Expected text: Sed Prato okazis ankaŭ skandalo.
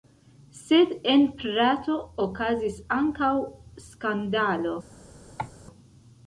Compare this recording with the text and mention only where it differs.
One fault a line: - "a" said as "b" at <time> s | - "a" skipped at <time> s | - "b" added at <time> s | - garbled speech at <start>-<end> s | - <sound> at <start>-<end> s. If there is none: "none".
- "en" added at 1.1 s
- cough at 5.4-5.5 s